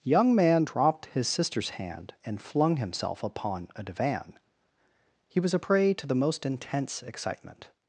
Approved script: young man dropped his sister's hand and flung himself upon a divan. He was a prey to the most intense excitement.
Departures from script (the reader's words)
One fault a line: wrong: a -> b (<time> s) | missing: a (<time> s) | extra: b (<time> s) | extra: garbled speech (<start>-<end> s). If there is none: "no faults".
no faults